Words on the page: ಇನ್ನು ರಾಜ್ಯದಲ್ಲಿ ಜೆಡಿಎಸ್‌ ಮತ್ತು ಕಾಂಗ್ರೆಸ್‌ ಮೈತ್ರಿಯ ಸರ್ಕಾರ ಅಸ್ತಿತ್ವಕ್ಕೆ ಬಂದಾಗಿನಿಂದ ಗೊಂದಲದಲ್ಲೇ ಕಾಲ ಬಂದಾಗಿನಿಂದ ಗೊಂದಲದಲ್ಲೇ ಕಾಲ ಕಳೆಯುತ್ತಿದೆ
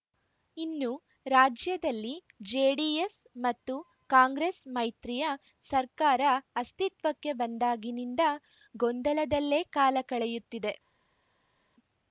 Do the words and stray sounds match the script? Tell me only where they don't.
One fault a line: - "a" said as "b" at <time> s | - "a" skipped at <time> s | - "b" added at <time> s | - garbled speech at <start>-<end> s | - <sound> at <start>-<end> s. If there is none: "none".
- "ಬಂದಾಗಿನಿಂದ ಗೊಂದಲದಲ್ಲೇ ಕಾಲ" skipped at 10.0 s